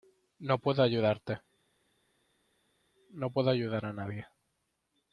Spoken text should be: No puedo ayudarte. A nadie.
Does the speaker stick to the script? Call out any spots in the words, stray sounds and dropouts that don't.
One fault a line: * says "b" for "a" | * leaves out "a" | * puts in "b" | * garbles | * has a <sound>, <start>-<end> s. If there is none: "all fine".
* puts in "No puedo ayudar"